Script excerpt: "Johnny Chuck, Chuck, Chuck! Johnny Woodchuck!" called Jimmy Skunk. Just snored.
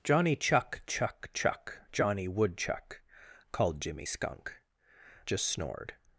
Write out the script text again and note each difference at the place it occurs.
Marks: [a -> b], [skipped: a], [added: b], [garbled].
"Johnny Chuck, Chuck, Chuck! Johnny Woodchuck!" called Jimmy Skunk. Just snored.